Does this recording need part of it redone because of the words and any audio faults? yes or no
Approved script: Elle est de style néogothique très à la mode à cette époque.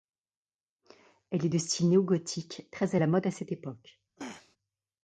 yes